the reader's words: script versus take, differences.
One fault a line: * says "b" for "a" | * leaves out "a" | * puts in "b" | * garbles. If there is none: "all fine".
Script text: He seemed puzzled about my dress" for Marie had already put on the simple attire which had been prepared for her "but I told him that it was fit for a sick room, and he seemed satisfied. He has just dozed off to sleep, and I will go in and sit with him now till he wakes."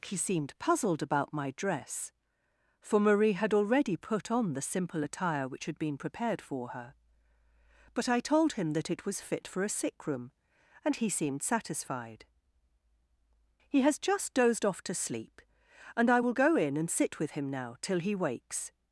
all fine